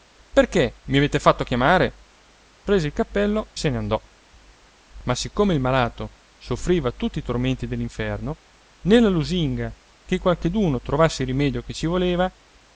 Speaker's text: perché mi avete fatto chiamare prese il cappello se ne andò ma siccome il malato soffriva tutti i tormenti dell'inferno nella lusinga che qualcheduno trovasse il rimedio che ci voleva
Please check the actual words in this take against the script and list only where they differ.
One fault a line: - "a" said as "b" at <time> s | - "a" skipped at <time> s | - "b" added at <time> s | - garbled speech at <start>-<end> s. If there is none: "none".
none